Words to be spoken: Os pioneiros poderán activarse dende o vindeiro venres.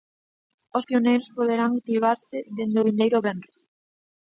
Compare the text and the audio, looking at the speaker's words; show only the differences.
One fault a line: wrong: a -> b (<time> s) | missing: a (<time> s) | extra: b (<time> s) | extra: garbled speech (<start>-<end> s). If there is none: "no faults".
no faults